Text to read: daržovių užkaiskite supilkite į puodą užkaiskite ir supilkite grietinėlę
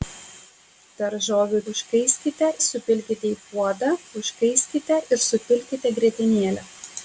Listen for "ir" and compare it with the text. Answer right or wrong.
right